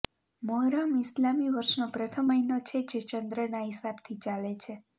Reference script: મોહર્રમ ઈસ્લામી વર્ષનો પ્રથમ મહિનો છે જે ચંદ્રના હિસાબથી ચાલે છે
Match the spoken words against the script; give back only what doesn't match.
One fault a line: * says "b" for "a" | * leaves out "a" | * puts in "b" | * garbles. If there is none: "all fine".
all fine